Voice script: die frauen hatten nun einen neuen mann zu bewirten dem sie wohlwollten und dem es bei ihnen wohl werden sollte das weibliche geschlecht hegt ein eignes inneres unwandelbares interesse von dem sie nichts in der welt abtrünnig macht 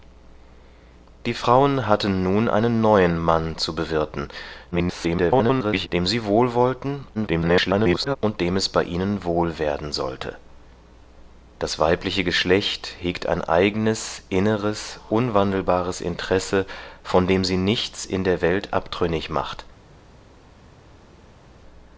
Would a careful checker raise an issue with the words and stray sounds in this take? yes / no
yes